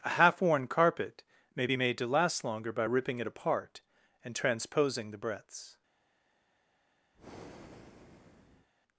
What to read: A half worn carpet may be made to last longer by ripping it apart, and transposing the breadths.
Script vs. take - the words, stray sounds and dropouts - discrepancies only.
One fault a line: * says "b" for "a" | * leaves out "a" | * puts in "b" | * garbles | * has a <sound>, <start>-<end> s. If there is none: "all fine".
* has a breath, 7.1-8.7 s